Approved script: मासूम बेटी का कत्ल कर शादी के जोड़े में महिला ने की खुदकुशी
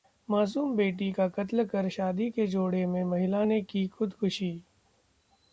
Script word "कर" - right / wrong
right